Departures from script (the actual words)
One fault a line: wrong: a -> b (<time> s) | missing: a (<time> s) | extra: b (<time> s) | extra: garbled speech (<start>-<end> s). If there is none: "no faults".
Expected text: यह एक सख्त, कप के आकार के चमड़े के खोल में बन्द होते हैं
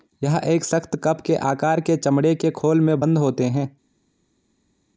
no faults